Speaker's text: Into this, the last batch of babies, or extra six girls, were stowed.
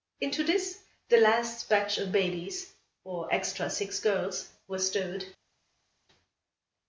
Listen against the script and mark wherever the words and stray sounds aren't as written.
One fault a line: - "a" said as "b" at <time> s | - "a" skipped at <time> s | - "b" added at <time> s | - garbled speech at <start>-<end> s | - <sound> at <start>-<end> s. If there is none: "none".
none